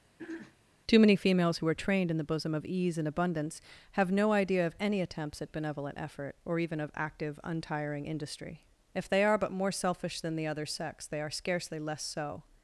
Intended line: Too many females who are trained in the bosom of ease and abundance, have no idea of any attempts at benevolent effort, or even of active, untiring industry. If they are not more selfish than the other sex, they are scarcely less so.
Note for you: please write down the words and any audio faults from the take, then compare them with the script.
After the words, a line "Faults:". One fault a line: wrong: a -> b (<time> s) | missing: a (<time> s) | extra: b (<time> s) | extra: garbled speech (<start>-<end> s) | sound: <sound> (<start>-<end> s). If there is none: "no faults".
Too many females who are trained in the bosom of ease and abundance, have no idea of any attempts at benevolent effort, or even of active, untiring industry. If they are but more selfish than the other sex, they are scarcely less so.
Faults:
sound: throat clearing (0.2-0.6 s)
wrong: not -> but (9.4 s)